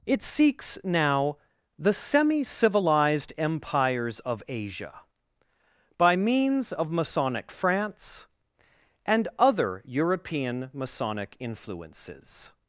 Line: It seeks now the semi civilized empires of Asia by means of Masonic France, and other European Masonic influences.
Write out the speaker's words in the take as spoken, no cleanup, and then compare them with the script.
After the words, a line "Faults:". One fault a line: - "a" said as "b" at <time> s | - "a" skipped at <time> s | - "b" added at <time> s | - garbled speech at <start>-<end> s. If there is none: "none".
It seeks now the semi civilized empires of Asia by means of Masonic France, and other European Masonic influences.
Faults:
none